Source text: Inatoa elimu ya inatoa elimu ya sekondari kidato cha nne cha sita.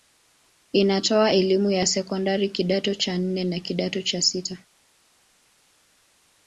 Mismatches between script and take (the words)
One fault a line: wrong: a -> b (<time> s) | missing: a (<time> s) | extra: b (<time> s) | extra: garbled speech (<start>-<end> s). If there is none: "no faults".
missing: inatoa elimu ya (1.9 s)
extra: na kidato (3.4 s)